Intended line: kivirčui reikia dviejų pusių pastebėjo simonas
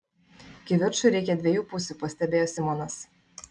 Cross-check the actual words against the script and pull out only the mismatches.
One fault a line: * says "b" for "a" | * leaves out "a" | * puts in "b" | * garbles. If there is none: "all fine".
all fine